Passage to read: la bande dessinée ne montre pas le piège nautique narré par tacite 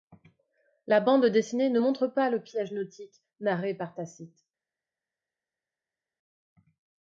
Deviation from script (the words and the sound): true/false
false